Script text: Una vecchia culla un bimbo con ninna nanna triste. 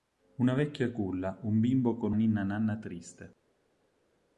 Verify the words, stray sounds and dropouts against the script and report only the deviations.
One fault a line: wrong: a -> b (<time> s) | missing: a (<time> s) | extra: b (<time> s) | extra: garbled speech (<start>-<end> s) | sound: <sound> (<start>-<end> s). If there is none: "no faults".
no faults